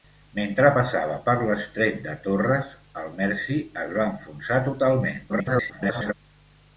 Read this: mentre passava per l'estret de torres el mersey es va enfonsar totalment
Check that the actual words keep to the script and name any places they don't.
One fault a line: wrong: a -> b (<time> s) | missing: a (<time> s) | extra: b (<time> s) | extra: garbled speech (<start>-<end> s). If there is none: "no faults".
extra: garbled speech (5.3-6.1 s)